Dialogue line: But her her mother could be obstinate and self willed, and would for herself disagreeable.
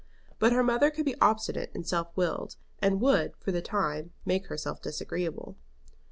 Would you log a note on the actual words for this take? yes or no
yes